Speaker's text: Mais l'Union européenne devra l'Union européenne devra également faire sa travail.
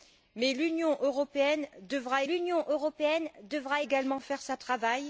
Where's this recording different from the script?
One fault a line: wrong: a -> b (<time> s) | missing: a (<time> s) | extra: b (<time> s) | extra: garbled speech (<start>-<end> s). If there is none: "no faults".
no faults